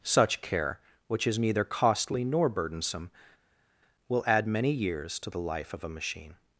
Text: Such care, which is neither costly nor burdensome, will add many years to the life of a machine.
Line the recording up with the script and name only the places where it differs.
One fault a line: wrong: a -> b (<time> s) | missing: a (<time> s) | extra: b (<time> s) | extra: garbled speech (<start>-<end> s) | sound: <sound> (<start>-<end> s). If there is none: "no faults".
no faults